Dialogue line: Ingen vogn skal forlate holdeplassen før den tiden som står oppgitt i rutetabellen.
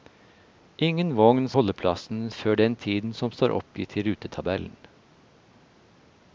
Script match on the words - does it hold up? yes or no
no